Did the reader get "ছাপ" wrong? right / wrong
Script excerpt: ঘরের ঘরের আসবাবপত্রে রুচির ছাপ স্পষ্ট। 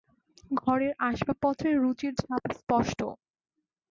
right